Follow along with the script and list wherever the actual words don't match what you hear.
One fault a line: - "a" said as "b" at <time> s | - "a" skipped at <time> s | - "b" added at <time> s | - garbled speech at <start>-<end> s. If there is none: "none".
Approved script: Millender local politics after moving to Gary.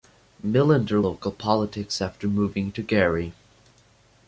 none